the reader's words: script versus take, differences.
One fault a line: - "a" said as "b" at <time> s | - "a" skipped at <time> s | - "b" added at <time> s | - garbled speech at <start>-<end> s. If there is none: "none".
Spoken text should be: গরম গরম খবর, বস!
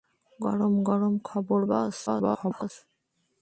- garbled speech at 2.1-2.7 s